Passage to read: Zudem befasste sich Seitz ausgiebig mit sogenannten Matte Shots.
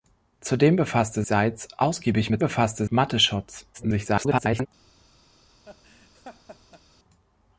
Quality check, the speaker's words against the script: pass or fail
fail